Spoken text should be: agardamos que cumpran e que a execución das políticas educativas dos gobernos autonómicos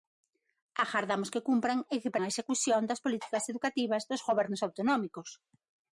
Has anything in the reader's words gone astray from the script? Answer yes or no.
no